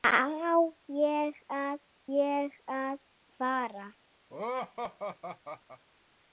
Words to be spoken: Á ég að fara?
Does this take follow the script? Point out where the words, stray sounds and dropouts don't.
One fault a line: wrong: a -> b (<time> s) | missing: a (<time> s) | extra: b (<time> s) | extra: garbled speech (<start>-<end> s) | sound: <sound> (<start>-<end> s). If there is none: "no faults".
extra: ég að (2.2 s)
sound: laugh (4.3-5.8 s)